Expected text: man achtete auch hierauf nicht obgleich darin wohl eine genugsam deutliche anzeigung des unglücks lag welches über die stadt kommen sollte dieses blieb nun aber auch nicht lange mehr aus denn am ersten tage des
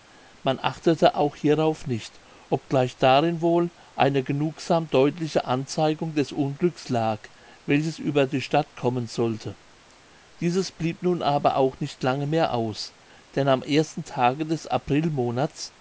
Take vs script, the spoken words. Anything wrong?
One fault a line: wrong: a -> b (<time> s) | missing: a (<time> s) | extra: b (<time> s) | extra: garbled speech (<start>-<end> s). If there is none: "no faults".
no faults